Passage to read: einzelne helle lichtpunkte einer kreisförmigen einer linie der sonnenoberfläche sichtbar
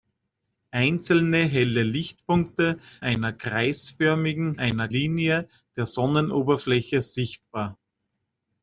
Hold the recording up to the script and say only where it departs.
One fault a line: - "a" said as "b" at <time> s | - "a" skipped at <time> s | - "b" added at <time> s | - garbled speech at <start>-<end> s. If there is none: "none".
none